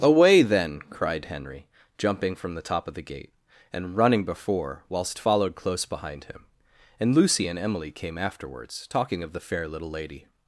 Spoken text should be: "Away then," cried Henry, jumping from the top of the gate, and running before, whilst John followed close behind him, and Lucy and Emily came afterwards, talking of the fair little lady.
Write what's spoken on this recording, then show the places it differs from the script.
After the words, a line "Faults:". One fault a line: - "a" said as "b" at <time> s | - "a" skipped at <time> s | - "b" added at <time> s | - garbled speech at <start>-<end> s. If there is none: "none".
"Away then," cried Henry, jumping from the top of the gate, and running before, whilst followed close behind him, and Lucy and Emily came afterwards, talking of the fair little lady.
Faults:
- "John" skipped at 5.2 s